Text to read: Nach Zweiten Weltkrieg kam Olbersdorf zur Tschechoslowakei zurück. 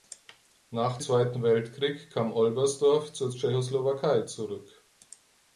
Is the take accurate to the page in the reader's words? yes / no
yes